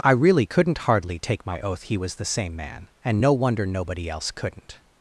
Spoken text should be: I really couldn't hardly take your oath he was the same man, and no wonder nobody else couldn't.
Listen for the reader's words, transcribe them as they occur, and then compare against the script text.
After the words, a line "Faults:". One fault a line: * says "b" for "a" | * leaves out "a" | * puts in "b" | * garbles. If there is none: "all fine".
I really couldn't hardly take my oath he was the same man, and no wonder nobody else couldn't.
Faults:
* says "my" for "your"